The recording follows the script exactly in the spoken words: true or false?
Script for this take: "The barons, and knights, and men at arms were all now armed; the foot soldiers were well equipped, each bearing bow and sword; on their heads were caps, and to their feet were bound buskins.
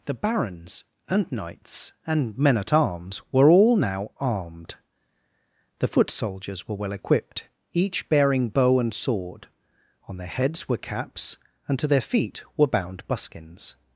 true